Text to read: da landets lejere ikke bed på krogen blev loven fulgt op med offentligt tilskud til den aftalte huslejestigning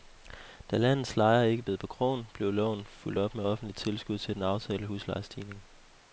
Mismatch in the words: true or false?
false